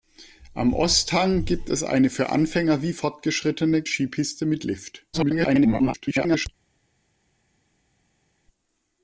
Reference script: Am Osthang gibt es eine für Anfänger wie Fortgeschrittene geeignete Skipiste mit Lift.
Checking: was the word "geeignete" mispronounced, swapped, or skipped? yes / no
yes